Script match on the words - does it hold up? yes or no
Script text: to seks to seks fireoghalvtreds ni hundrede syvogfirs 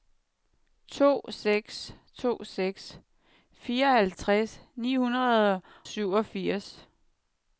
yes